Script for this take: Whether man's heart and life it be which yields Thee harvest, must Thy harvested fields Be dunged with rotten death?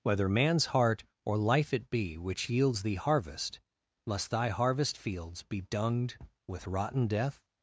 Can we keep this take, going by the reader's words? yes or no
no